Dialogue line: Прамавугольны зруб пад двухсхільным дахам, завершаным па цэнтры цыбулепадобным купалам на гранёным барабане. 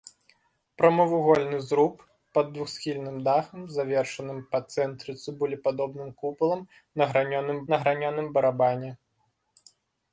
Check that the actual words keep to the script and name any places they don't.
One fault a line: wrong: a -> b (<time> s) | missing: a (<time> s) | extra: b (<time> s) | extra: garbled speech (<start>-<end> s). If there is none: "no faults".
extra: на гранёным (7.7 s)